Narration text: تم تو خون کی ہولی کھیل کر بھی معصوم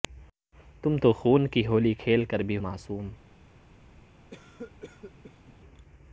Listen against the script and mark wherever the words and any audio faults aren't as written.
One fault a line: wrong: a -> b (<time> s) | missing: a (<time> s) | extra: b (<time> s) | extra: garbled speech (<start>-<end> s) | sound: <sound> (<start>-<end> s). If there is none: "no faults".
sound: cough (4.3-5.6 s)